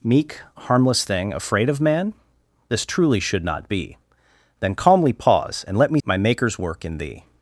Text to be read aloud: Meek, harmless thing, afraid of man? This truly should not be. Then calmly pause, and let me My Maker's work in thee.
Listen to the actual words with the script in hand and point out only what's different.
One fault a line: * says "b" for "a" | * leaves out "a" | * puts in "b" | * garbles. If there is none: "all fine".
all fine